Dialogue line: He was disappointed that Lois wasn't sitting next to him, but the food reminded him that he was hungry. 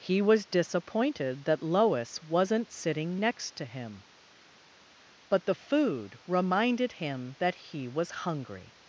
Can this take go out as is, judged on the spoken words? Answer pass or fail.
pass